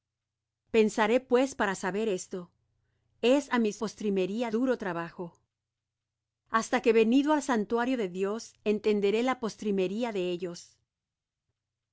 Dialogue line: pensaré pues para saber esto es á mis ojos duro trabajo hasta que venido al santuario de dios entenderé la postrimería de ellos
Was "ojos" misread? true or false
true